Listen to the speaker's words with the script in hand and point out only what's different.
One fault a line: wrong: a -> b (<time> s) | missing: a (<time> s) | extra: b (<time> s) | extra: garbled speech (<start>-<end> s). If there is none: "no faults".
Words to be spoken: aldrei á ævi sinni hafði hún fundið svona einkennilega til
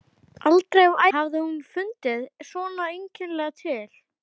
missing: ævi sinni (1.0 s)